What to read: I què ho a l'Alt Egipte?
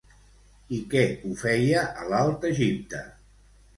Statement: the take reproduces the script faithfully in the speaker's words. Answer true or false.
false